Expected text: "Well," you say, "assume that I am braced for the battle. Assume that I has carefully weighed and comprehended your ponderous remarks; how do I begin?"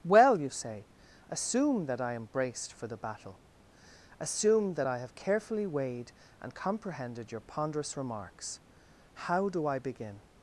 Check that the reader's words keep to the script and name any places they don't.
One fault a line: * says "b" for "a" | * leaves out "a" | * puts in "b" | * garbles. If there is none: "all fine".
* says "have" for "has"